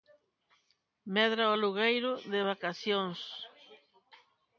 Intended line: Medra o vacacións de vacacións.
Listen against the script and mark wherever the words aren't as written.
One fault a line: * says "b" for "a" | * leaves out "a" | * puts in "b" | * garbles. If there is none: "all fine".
* says "alugueiro" for "vacacións"